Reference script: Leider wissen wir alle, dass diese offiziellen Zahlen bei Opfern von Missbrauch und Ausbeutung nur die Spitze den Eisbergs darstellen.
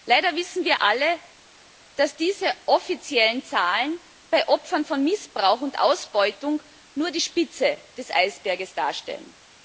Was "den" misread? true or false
true